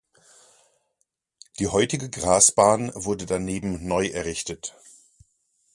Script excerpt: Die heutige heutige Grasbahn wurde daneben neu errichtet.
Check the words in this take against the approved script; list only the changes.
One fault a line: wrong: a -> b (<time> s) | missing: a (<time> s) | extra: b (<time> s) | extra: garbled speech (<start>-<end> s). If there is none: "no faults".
missing: heutige (2.1 s)